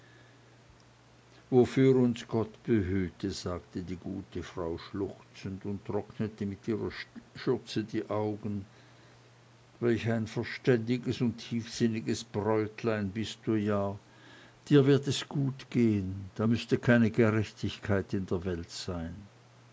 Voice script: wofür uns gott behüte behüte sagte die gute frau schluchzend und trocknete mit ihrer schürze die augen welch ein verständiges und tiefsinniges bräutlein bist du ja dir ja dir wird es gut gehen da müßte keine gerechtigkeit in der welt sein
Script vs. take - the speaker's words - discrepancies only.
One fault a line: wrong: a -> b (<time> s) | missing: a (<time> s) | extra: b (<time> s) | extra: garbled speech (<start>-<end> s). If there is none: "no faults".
missing: behüte (3.3 s)
missing: ja dir (14.9 s)